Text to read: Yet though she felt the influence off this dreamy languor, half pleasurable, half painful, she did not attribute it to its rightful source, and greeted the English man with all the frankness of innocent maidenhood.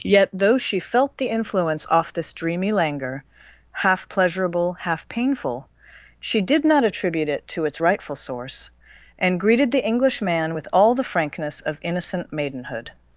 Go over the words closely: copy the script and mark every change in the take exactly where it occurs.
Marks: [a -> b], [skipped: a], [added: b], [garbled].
Yet though she felt the influence off this dreamy languor, half pleasurable, half painful, she did not attribute it to its rightful source, and greeted the English man with all the frankness of innocent maidenhood.